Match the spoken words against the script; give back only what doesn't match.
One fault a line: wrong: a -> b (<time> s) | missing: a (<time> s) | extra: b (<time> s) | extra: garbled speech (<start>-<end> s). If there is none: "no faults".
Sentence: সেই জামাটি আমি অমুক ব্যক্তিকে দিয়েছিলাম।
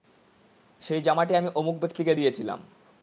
no faults